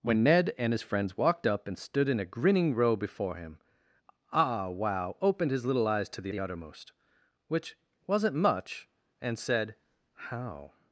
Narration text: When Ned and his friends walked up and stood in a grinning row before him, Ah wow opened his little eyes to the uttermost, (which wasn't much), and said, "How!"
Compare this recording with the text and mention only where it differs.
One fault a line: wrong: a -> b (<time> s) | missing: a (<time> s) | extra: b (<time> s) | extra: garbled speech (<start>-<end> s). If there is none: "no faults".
extra: the (6.3 s)